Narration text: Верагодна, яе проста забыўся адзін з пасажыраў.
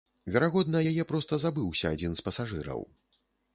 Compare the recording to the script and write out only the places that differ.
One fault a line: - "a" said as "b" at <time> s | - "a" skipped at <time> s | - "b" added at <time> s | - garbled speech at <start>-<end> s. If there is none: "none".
none